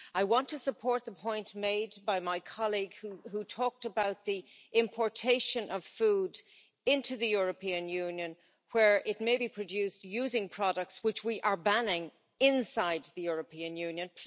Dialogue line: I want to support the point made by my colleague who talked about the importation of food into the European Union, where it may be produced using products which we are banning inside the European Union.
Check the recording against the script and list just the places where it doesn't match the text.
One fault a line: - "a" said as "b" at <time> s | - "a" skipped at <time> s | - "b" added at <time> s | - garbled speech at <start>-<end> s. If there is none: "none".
none